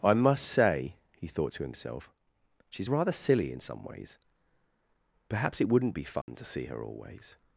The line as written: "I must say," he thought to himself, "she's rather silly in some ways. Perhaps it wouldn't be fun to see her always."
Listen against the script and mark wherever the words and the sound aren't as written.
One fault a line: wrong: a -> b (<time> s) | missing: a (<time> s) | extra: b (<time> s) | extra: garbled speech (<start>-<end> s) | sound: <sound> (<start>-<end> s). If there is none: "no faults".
sound: dropout (6.2-6.3 s)